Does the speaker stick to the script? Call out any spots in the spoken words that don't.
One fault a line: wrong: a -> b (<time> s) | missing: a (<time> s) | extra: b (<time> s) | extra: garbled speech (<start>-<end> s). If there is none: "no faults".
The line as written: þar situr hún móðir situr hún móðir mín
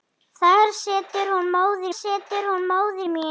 no faults